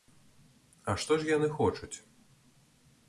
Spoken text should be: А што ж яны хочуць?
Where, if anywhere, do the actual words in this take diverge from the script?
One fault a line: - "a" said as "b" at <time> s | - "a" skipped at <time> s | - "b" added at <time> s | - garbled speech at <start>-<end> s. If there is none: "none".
none